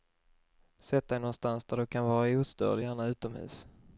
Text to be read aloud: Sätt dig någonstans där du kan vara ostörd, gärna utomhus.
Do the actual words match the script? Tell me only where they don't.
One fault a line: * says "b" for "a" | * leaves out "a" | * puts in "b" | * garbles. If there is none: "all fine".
all fine